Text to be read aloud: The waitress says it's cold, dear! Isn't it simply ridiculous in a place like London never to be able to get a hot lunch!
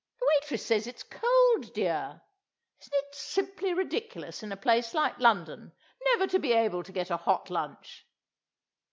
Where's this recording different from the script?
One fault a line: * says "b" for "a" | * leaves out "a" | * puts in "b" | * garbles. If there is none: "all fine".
all fine